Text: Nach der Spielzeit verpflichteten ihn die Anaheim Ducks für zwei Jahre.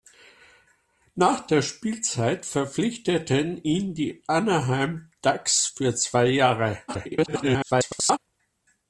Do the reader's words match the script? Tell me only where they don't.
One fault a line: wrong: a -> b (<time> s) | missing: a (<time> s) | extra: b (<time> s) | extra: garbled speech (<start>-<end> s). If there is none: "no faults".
extra: garbled speech (6.9-8.2 s)